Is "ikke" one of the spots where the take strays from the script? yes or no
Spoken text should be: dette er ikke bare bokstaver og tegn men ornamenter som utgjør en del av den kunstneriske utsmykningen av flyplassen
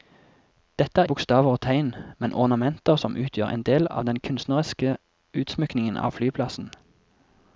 yes